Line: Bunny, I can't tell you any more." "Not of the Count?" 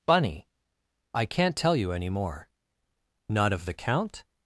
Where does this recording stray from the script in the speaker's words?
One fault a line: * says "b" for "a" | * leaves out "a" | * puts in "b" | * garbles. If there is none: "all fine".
all fine